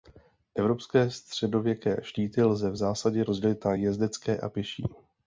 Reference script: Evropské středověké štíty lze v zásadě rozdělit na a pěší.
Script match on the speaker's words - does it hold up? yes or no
no